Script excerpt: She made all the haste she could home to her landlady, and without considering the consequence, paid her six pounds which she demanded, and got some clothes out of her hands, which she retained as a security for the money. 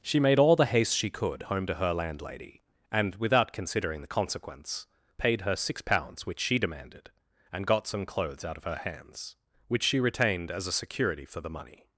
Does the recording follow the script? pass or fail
pass